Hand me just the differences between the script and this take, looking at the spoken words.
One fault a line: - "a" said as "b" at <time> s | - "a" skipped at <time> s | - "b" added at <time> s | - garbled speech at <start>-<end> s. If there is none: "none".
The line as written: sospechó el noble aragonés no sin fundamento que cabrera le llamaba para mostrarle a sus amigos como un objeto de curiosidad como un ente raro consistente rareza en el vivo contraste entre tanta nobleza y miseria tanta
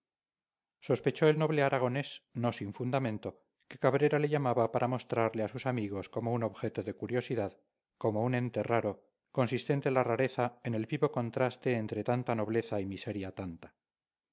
- "la" added at 9.9 s